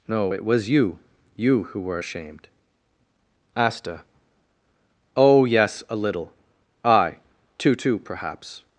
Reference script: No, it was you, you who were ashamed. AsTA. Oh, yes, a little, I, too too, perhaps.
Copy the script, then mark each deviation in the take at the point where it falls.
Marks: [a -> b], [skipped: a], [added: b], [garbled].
No, it was you, you who were ashamed. AsTA. Oh, yes, a little, I, too too, perhaps.